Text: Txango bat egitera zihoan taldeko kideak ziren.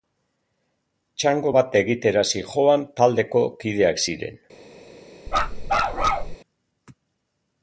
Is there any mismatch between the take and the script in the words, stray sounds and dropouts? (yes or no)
yes